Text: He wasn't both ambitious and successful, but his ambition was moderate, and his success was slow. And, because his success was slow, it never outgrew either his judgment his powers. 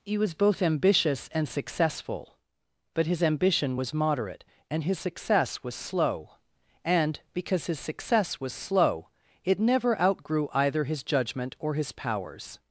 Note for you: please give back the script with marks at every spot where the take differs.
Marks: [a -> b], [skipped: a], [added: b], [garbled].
He [wasn't -> was] both ambitious and successful, but his ambition was moderate, and his success was slow. And, because his success was slow, it never outgrew either his judgment [added: or] his powers.